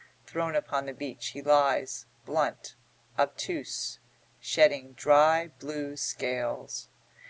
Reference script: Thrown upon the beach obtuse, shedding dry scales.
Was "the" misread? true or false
false